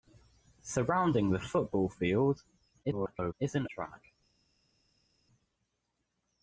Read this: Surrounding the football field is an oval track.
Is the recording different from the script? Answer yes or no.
yes